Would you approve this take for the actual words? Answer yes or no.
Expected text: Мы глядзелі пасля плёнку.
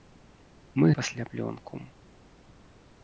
no